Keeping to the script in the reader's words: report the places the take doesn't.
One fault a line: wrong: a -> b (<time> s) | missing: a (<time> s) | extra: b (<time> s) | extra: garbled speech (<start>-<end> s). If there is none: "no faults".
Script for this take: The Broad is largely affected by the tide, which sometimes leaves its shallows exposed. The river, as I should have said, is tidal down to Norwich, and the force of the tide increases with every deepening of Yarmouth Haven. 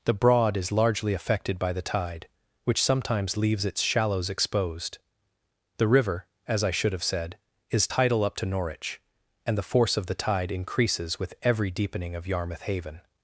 wrong: down -> up (8.2 s)